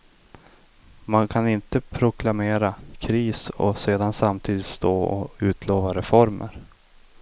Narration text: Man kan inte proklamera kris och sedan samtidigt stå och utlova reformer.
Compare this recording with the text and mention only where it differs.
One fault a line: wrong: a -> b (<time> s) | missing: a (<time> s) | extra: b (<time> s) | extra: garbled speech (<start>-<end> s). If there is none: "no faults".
no faults